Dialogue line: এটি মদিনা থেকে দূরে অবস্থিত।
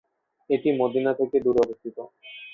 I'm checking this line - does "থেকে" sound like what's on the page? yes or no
yes